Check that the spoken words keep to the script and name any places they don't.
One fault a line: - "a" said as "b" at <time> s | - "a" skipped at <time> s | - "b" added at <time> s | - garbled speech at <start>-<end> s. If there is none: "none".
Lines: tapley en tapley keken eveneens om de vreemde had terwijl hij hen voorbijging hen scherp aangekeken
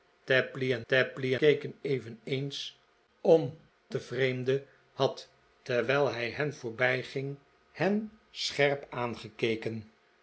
none